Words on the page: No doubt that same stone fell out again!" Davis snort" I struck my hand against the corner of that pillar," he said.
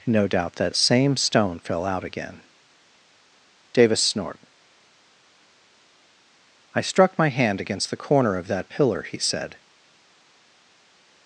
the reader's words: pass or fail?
pass